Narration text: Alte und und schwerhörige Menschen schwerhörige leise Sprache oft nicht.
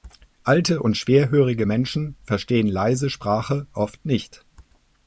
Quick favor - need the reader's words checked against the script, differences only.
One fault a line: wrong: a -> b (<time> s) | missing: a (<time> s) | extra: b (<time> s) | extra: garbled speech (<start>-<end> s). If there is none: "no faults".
missing: und (1.0 s)
wrong: schwerhörige -> verstehen (2.2 s)